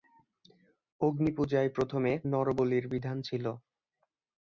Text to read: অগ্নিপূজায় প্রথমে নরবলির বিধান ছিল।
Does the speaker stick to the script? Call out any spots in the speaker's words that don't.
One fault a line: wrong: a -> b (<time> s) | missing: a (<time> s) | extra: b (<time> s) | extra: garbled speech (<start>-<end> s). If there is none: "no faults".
no faults